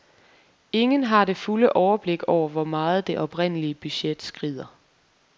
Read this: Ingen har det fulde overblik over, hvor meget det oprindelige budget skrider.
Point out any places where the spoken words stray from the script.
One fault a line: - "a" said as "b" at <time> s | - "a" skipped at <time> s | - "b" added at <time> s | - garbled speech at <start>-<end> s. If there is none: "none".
none